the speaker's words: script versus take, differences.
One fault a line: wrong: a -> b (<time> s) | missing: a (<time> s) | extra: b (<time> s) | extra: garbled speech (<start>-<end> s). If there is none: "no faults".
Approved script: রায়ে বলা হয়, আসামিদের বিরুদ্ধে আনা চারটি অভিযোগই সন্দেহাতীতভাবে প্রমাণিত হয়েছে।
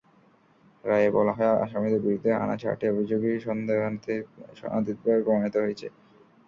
no faults